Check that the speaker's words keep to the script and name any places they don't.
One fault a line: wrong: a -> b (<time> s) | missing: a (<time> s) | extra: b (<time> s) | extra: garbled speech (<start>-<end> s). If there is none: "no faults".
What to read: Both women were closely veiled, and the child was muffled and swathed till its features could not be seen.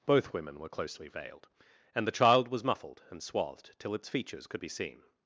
missing: not (4.6 s)